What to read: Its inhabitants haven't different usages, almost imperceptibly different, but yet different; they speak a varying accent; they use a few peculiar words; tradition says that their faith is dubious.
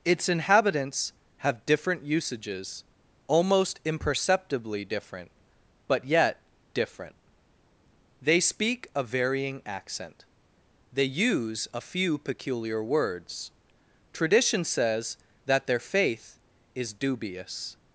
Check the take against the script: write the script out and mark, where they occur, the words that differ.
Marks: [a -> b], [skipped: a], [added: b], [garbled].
Its inhabitants [haven't -> have] different usages, almost imperceptibly different, but yet different; they speak a varying accent; they use a few peculiar words; tradition says that their faith is dubious.